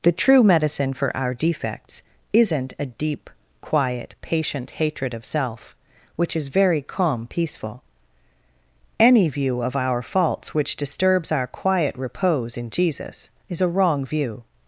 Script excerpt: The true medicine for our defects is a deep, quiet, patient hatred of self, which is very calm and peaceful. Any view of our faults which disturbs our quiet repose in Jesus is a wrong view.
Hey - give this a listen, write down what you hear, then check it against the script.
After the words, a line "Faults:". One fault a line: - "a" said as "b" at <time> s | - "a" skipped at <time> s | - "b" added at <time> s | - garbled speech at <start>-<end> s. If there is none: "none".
The true medicine for our defects isn't a deep, quiet, patient hatred of self, which is very calm peaceful. Any view of our faults which disturbs our quiet repose in Jesus is a wrong view.
Faults:
- "is" said as "isn't" at 2.3 s
- "and" skipped at 7.3 s